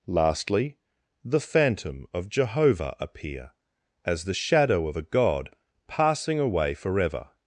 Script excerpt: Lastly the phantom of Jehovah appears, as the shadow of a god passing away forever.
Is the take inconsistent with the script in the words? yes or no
yes